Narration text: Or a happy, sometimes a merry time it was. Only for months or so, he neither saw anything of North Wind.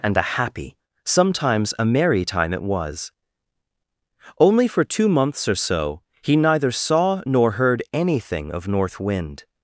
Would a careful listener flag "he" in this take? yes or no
no